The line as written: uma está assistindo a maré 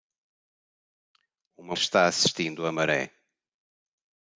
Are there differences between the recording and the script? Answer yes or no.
no